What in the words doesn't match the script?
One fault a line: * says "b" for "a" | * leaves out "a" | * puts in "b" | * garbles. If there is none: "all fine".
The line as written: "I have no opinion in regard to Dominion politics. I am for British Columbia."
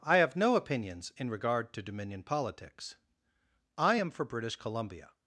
* says "opinions" for "opinion"